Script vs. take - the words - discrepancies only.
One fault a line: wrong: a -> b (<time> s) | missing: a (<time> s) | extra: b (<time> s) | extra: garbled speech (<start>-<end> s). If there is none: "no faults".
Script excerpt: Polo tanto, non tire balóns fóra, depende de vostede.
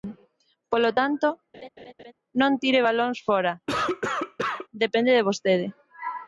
no faults